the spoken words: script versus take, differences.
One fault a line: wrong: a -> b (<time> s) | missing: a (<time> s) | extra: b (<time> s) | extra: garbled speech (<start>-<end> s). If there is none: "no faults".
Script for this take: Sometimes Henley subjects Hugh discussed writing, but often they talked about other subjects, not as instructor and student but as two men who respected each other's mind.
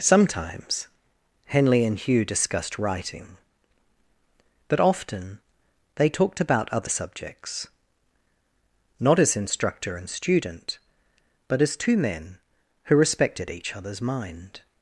wrong: subjects -> and (1.9 s)